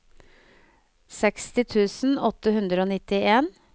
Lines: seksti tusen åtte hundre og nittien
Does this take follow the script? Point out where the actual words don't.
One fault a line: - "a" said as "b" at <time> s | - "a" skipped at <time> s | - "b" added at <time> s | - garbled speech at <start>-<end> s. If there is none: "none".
none